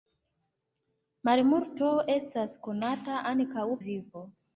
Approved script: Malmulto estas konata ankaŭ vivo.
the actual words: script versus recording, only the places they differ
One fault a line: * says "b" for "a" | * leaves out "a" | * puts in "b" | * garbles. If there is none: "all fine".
all fine